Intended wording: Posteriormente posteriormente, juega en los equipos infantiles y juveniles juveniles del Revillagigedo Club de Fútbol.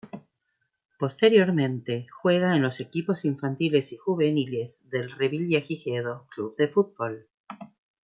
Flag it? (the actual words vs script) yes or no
yes